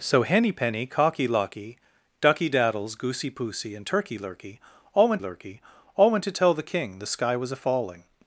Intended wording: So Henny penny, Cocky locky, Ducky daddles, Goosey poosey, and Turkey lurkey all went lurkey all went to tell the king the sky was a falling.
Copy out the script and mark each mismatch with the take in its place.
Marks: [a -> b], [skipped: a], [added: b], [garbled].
So Henny penny, Cocky locky, Ducky daddles, Goosey poosey, and Turkey lurkey all went lurkey all went to tell the king the sky was a falling.